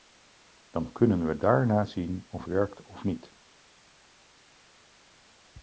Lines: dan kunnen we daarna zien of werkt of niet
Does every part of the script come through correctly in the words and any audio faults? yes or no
yes